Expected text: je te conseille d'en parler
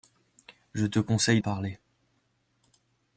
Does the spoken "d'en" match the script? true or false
false